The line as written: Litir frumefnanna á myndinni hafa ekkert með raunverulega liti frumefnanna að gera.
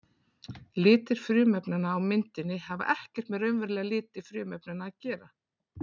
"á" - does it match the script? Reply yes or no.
yes